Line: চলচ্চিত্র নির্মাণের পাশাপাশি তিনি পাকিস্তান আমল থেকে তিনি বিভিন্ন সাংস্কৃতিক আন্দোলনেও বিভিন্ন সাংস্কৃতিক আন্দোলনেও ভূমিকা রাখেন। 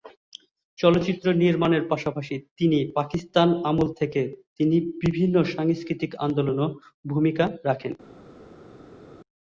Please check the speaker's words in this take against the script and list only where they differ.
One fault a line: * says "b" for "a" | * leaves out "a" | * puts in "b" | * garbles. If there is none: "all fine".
* leaves out "বিভিন্ন সাংস্কৃতিক আন্দোলনেও"